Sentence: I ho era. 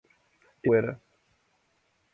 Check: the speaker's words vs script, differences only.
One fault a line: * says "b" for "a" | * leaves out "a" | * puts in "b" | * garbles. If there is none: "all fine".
all fine